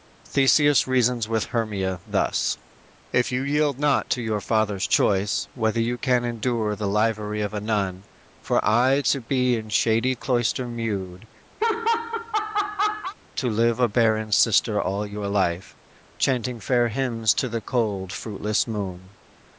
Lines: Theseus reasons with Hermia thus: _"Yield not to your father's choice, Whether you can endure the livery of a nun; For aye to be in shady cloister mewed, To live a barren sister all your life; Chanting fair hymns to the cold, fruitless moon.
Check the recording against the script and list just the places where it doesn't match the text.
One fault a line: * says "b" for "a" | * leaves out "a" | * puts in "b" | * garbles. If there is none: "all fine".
* puts in "If you"